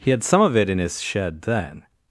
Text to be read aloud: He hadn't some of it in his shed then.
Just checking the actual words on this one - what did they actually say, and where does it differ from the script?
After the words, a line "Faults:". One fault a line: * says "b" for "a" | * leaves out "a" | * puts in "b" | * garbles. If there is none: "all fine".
He had some of it in his shed then.
Faults:
* says "had" for "hadn't"